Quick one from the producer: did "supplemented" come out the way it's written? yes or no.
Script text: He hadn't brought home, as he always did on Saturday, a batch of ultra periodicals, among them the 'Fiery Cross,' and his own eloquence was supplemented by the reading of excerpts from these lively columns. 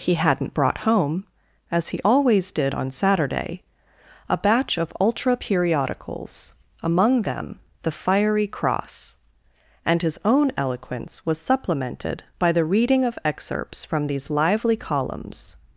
yes